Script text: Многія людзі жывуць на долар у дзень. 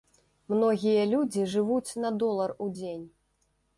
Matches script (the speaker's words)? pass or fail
pass